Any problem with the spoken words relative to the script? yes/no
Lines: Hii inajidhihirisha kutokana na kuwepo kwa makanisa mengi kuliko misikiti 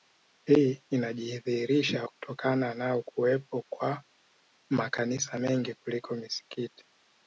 no